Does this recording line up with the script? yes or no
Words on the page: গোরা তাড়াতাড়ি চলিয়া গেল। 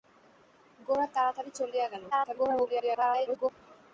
no